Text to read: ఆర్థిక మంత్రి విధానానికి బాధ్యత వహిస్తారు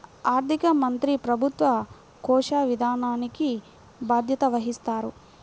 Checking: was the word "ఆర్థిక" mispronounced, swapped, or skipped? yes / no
no